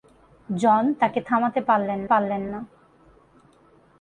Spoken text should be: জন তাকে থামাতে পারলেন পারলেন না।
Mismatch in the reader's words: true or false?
false